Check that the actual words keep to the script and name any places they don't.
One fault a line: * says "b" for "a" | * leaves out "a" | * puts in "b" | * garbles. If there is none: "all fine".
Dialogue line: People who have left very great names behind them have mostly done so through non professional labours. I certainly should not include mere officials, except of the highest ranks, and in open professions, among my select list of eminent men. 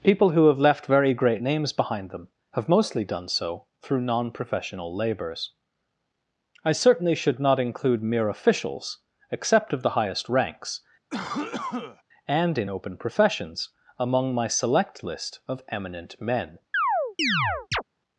all fine